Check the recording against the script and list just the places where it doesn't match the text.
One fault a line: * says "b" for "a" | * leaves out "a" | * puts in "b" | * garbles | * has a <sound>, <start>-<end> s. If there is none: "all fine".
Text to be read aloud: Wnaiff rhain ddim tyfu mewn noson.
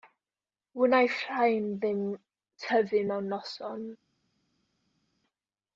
all fine